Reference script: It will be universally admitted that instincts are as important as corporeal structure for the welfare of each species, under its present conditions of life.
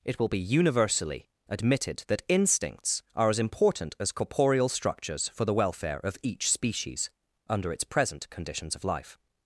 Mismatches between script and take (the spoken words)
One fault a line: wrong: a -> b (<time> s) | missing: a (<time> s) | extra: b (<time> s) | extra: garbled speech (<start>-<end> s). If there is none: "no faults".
wrong: structure -> structures (4.7 s)